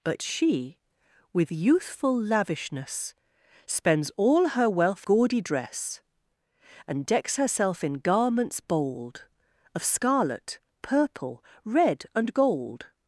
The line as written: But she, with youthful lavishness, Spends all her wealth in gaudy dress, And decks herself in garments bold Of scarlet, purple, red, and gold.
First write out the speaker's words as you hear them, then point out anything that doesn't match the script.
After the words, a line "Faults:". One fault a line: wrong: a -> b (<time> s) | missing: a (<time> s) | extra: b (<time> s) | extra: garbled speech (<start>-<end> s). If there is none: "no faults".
But she, with youthful lavishness, Spends all her wealth gaudy dress, And decks herself in garments bold Of scarlet, purple, red, and gold.
Faults:
missing: in (5.1 s)